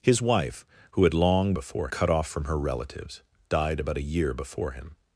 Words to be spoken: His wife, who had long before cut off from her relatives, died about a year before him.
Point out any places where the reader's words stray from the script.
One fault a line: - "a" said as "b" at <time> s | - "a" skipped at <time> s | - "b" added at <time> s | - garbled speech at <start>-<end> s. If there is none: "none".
none